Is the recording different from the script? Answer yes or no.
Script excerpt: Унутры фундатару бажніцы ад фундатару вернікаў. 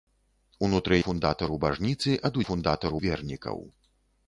no